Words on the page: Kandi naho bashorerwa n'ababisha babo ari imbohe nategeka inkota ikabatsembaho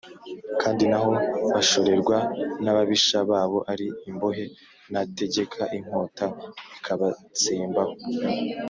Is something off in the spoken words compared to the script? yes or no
no